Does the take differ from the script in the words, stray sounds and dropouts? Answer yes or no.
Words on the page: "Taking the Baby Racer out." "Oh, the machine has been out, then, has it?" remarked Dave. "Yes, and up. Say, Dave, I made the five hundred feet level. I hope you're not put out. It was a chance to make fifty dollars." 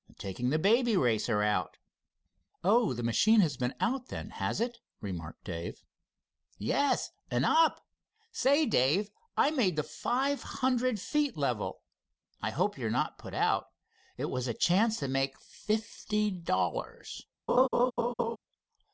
yes